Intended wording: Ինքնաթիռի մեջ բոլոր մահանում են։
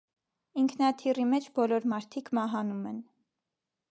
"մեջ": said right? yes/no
yes